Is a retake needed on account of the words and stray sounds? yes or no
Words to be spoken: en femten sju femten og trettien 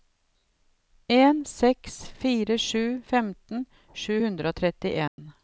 yes